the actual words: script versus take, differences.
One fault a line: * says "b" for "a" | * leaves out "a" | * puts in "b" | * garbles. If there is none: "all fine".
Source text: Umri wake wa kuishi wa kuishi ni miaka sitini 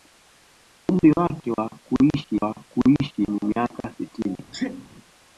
all fine